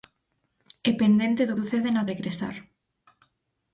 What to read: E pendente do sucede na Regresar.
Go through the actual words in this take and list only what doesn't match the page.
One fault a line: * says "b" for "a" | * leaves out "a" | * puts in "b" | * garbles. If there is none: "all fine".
all fine